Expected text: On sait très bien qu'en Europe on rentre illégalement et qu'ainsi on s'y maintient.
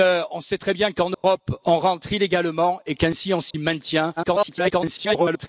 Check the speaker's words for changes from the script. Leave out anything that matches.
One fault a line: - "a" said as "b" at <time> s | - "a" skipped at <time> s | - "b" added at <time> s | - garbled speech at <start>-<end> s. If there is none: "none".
- garbled speech at 4.2-5.5 s